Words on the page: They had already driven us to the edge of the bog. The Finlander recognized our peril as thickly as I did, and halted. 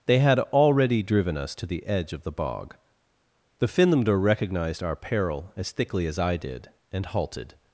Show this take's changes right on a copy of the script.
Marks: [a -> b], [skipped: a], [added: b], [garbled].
They had already driven us to the edge of the bog. The Finlander recognized our peril as thickly as I did, and halted.